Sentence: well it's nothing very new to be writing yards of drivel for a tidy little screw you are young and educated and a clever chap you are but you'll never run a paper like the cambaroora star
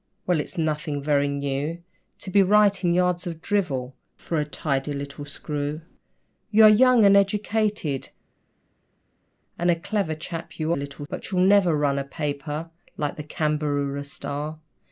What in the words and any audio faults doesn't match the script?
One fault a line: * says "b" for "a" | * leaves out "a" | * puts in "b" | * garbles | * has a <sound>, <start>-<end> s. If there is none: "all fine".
* says "little" for "are"